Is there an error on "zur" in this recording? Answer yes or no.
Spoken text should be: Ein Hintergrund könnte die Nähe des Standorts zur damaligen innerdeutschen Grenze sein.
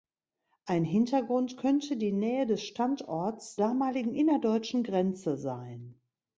yes